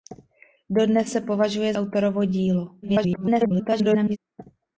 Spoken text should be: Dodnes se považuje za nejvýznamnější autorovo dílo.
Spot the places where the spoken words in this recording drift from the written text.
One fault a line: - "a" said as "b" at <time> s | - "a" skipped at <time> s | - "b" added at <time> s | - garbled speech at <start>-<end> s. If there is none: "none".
- "za nejvýznamnější" skipped at 1.7 s
- garbled speech at 2.8-4.2 s